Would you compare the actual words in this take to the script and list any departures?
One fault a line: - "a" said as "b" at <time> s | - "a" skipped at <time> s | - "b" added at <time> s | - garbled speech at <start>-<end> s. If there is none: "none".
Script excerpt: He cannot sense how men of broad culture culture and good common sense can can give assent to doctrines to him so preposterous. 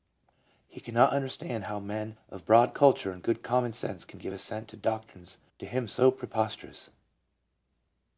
- "sense" said as "understand" at 1.1 s
- "culture" skipped at 3.1 s
- "can" skipped at 4.2 s